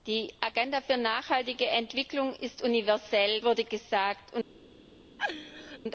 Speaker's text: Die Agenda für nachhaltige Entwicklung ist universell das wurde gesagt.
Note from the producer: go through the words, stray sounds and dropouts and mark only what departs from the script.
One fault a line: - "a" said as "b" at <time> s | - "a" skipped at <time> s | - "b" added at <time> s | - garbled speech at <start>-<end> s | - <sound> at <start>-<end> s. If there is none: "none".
- "das" skipped at 3.4 s
- laugh at 5.2-5.8 s